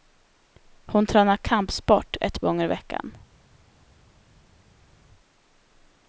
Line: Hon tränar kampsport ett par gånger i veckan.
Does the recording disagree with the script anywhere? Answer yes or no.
yes